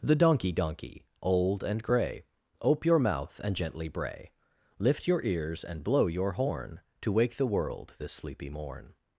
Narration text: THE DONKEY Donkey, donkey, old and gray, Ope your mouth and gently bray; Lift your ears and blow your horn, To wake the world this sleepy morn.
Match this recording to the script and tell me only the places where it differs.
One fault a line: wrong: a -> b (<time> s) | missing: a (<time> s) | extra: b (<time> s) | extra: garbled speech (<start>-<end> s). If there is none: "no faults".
missing: donkey (1.1 s)